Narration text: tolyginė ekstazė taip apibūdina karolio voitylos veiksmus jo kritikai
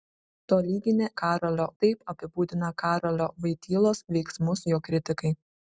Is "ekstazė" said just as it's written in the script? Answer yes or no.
no